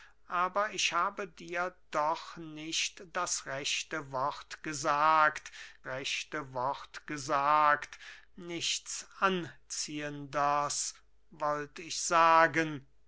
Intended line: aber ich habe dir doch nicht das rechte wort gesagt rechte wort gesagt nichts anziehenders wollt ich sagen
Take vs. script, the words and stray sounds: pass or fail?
pass